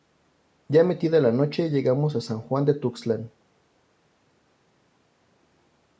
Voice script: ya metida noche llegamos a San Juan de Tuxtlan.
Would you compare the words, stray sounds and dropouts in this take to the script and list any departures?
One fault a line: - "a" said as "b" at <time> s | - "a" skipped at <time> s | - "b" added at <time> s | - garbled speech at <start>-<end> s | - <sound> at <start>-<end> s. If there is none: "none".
- "la" added at 1.2 s